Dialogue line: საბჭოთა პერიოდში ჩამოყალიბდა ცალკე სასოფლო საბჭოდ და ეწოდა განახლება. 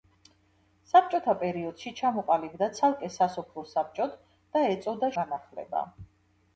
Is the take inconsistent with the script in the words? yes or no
no